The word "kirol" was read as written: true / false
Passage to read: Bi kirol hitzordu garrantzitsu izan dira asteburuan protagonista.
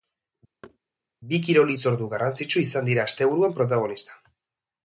true